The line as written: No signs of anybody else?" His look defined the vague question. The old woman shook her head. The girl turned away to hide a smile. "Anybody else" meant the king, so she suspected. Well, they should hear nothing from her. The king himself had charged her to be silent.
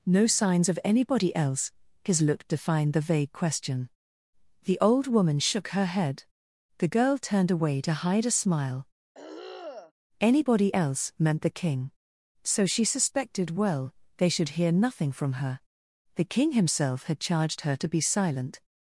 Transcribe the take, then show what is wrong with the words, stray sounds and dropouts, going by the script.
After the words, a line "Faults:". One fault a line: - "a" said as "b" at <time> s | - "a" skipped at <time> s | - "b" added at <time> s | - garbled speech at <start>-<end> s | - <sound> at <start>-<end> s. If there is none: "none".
No signs of anybody else?" His look defined the vague question. The old woman shook her head. The girl turned away to hide a smile. "Anybody else" meant the king, so she suspected. Well, they should hear nothing from her. The king himself had charged her to be silent.
Faults:
- throat clearing at 9.1-9.9 s